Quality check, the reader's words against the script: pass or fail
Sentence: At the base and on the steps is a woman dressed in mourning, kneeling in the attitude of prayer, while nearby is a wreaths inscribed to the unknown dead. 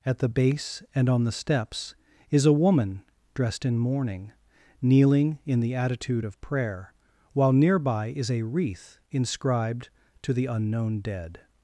fail